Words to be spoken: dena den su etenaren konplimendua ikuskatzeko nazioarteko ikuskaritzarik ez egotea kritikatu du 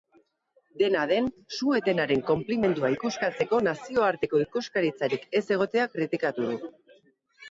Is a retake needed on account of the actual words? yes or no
no